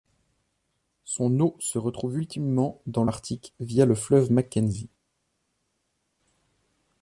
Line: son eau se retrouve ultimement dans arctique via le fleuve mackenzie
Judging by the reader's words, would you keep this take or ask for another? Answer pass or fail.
pass